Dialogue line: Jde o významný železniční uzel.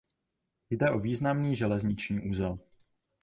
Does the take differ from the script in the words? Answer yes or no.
no